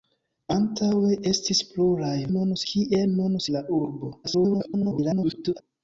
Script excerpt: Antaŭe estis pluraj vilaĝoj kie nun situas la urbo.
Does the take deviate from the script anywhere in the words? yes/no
yes